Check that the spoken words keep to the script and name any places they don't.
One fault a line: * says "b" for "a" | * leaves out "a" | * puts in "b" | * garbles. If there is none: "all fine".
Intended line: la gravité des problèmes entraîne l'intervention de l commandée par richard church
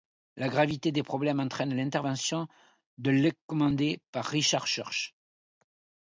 all fine